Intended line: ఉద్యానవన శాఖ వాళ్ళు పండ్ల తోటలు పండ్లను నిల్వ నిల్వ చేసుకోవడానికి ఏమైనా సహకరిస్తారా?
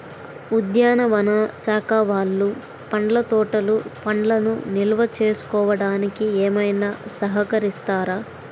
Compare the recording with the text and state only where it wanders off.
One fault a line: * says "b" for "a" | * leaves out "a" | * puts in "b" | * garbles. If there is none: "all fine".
* leaves out "నిల్వ"